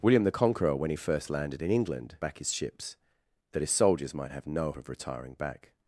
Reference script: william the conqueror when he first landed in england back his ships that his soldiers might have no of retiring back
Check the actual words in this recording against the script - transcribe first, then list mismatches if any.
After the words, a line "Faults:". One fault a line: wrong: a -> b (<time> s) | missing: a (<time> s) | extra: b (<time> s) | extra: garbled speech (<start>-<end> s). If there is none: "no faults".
william the conqueror when he first landed in england back his ships that his soldiers might have no of retiring back
Faults:
no faults